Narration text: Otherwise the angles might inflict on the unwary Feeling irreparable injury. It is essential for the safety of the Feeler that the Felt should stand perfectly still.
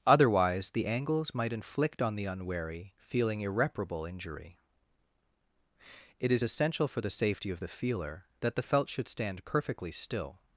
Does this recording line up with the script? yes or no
yes